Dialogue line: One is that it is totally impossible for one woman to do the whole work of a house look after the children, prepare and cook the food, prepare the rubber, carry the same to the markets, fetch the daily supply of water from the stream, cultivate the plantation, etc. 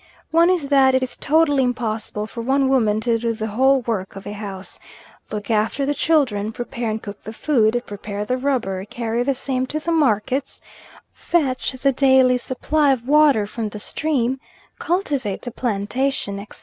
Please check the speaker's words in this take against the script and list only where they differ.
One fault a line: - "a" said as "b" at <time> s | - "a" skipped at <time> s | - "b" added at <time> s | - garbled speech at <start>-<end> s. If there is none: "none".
none